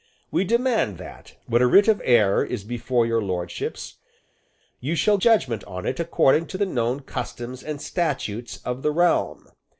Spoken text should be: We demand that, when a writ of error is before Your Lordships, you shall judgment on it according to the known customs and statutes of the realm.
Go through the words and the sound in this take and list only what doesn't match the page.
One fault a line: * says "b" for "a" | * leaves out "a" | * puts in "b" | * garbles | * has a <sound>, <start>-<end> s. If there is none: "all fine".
all fine